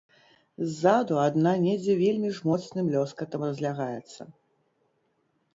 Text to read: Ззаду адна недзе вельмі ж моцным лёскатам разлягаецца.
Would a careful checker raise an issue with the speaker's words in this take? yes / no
no